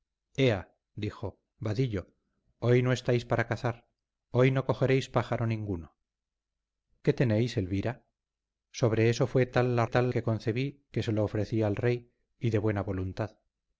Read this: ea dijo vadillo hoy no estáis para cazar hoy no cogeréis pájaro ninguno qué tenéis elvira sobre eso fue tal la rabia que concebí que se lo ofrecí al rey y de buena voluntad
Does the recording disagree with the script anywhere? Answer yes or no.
yes